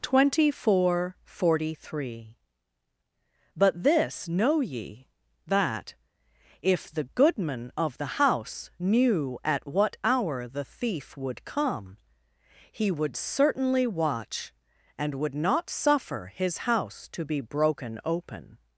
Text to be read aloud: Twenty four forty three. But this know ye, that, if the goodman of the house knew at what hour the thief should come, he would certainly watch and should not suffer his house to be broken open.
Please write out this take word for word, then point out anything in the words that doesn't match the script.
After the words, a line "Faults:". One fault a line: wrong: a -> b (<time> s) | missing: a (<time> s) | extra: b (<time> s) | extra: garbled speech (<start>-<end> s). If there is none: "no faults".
Twenty four forty three. But this know ye, that, if the goodman of the house knew at what hour the thief would come, he would certainly watch and would not suffer his house to be broken open.
Faults:
wrong: should -> would (11.2 s)
wrong: should -> would (15.1 s)